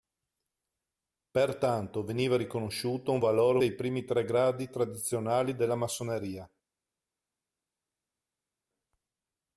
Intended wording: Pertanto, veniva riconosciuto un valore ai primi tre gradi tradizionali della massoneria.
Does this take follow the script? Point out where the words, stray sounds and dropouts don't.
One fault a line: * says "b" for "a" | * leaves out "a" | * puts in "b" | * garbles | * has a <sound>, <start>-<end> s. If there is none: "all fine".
all fine